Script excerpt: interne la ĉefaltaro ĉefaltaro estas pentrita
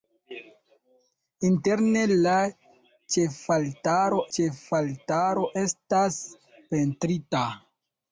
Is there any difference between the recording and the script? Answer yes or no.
no